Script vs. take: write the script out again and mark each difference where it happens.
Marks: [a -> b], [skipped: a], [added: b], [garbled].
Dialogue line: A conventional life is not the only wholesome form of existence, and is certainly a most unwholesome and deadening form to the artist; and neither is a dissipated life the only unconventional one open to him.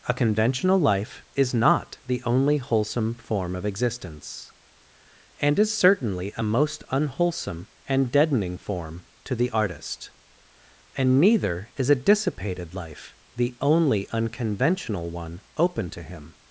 A conventional life is not the only wholesome form of existence, and is certainly a most unwholesome and deadening form to the artist; and neither is a dissipated life the only unconventional one open to him.